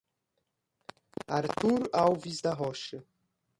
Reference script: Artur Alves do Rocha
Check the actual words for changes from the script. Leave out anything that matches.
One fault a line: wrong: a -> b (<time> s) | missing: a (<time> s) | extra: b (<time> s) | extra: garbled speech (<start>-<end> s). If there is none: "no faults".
wrong: do -> da (2.4 s)